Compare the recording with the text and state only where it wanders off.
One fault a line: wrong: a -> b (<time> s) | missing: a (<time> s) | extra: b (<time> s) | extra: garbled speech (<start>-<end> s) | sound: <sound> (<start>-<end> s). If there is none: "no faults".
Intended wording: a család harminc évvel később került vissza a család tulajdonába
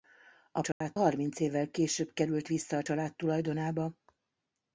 sound: dropout (0.7-0.8 s)